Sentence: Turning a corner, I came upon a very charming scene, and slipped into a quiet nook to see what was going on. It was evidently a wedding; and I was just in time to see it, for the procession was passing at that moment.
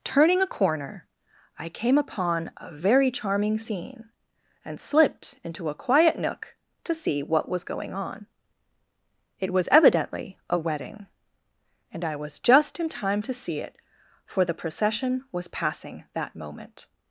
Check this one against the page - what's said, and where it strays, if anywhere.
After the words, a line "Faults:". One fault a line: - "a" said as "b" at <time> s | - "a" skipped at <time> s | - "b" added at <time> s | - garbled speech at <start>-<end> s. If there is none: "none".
Turning a corner, I came upon a very charming scene, and slipped into a quiet nook to see what was going on. It was evidently a wedding; and I was just in time to see it, for the procession was passing that moment.
Faults:
- "at" skipped at 16.1 s